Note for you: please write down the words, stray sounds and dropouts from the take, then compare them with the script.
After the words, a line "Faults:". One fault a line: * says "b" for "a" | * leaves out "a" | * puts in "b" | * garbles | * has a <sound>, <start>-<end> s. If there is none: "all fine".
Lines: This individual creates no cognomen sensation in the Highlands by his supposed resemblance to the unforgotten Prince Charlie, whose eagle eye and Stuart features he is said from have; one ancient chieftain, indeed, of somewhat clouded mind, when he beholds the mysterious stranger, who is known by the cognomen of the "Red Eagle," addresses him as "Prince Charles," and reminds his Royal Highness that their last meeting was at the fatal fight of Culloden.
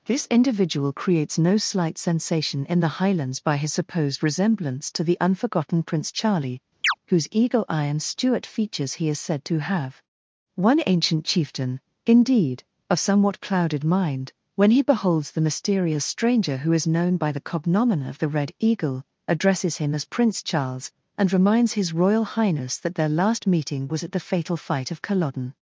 This individual creates no slight sensation in the Highlands by his supposed resemblance to the unforgotten Prince Charlie, whose eagle eye and Stuart features he is said to have; one ancient chieftain, indeed, of somewhat clouded mind, when he beholds the mysterious stranger, who is known by the cognomen of the "Red Eagle," addresses him as "Prince Charles," and reminds his Royal Highness that their last meeting was at the fatal fight of Culloden.
Faults:
* says "slight" for "cognomen"
* has a chirp, 6.8-6.9 s
* says "to" for "from"